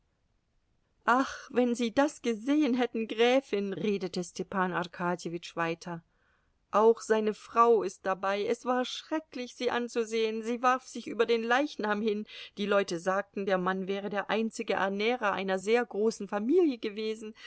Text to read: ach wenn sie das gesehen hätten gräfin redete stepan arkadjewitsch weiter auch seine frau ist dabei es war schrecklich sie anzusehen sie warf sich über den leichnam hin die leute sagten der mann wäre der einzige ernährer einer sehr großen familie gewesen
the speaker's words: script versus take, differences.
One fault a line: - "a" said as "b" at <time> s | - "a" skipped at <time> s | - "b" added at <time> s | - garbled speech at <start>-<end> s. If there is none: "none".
none